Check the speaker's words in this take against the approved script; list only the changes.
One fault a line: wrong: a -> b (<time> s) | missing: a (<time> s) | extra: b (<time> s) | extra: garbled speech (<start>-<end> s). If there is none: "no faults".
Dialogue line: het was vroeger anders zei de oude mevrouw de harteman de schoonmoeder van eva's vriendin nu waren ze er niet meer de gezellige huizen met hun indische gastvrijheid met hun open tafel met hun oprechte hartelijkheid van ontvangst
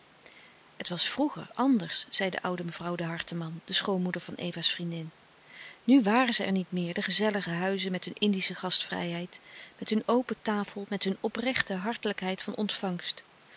no faults